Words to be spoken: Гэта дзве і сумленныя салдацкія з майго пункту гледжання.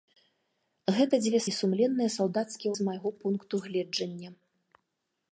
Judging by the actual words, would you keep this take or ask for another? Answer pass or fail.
pass